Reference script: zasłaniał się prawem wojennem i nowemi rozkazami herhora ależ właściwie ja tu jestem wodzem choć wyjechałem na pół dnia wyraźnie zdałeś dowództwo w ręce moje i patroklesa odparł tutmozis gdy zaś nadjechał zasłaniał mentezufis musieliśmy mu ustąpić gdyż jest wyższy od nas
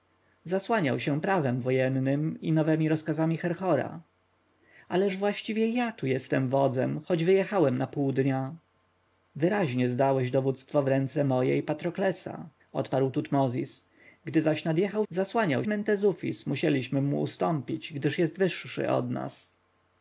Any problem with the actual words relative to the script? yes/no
no